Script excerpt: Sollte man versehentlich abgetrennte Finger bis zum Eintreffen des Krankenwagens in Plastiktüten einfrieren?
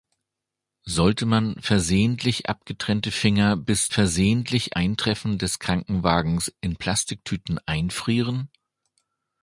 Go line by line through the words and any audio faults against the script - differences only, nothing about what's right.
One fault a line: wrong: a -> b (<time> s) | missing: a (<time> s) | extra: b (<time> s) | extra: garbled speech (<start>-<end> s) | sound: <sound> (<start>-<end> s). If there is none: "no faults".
wrong: zum -> versehentlich (3.9 s)